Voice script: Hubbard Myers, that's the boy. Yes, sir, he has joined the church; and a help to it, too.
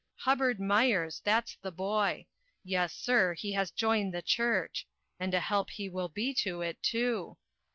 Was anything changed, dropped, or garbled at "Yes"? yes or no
no